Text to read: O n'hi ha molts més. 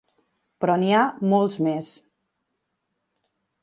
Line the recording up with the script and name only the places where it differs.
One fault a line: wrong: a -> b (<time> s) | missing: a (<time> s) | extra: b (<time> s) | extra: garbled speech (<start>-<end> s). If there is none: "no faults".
wrong: O -> Però (0.6 s)